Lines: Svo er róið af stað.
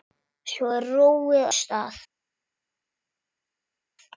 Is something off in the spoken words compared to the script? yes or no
yes